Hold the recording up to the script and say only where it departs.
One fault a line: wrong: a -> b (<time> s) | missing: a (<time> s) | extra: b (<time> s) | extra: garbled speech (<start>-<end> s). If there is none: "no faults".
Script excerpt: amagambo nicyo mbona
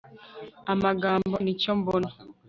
no faults